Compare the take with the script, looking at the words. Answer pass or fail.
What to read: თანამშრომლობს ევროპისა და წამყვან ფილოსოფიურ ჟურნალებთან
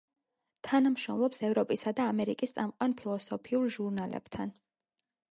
fail